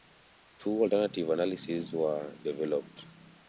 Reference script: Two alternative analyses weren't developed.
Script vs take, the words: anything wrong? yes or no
yes